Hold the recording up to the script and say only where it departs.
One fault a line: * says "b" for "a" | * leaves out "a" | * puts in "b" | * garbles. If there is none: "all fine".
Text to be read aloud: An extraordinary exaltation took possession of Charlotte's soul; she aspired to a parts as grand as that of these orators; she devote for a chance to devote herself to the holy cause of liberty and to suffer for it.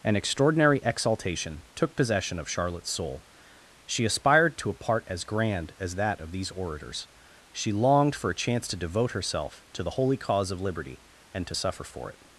* says "part" for "parts"
* says "longed" for "devote"